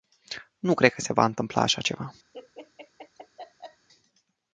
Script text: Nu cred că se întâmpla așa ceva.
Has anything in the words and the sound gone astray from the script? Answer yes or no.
yes